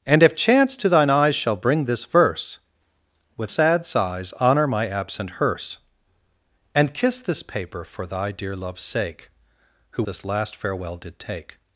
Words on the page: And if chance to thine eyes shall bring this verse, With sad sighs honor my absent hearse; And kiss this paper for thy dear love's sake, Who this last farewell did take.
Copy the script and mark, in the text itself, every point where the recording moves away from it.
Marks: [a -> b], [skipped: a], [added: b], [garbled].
And if chance to thine eyes shall bring this verse, With sad sighs honor my absent hearse; And kiss this paper for thy dear love's sake, Who this last farewell did take.